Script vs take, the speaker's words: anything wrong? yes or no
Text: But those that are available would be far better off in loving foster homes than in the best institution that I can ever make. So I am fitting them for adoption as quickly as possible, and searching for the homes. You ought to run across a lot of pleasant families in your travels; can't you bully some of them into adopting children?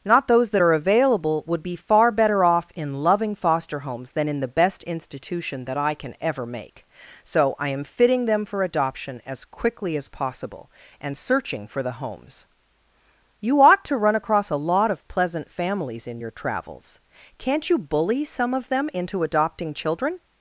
yes